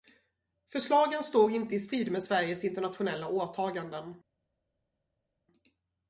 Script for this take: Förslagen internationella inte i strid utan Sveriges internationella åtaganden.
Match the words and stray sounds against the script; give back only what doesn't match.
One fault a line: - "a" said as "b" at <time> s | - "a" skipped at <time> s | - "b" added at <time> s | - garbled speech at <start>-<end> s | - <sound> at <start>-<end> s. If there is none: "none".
- "internationella" said as "står" at 1.2 s
- "utan" said as "med" at 2.1 s